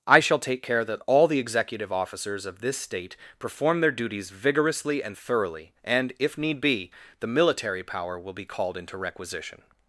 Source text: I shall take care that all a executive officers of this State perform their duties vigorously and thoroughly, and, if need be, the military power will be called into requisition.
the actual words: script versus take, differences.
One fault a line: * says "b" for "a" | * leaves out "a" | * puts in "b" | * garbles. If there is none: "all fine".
* says "the" for "a"